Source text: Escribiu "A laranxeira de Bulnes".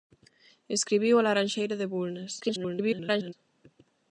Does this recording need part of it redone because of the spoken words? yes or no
yes